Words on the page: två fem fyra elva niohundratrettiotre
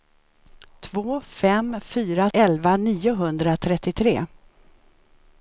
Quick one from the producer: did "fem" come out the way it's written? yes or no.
yes